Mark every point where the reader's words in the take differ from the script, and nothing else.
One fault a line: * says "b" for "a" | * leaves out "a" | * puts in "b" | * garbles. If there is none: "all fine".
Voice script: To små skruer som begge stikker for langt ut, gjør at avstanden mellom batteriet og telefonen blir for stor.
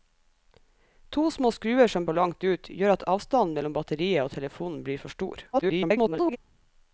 * leaves out "begge stikker"
* garbles